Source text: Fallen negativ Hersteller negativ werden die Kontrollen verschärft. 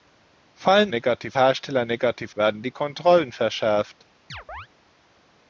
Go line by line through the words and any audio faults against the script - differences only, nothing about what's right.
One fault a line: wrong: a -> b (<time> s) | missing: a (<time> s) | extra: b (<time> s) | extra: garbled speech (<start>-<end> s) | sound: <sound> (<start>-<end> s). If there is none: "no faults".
sound: chirp (4.3-4.7 s)